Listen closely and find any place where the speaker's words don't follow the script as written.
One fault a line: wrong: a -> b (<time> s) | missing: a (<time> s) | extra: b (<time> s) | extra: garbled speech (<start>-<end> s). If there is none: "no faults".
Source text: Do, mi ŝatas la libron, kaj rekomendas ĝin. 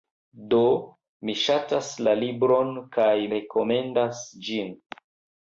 no faults